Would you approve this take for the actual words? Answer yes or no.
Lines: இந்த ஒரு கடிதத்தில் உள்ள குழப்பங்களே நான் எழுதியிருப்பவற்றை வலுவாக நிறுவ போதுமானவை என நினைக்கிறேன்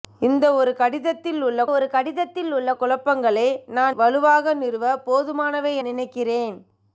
no